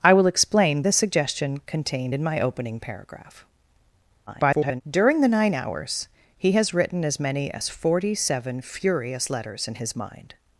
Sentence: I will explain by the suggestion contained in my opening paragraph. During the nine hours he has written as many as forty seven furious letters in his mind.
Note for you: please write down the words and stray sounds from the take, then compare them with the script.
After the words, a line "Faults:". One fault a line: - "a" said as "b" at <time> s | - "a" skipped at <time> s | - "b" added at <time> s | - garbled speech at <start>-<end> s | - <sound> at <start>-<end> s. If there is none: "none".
I will explain the suggestion contained in my opening paragraph. [garbled] During the nine hours he has written as many as forty seven furious letters in his mind.
Faults:
- "by" skipped at 0.8 s
- garbled speech at 4.3-4.8 s